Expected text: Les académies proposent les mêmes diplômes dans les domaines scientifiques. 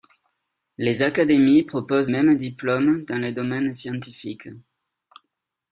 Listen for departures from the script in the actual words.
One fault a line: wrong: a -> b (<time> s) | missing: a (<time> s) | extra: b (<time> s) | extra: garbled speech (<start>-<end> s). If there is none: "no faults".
missing: les (2.1 s)